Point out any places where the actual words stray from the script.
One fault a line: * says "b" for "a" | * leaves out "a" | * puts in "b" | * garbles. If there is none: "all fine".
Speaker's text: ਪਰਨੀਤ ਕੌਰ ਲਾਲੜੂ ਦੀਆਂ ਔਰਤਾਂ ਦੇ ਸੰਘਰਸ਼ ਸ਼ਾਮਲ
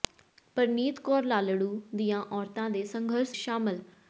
all fine